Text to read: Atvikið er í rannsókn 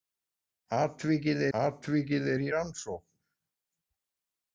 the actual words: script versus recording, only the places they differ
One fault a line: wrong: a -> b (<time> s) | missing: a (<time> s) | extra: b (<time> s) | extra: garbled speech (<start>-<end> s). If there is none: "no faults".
extra: atvikið (1.6 s)